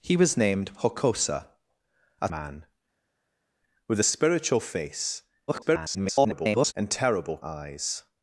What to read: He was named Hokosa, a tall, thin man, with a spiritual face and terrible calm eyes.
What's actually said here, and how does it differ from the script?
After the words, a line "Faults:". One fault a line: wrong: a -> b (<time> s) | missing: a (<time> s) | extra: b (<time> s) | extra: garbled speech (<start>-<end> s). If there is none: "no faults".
He was named Hokosa, a man, with a spiritual face [garbled] and terrible eyes.
Faults:
missing: tall thin (2.3 s)
extra: garbled speech (5.5-6.7 s)
missing: calm (7.4 s)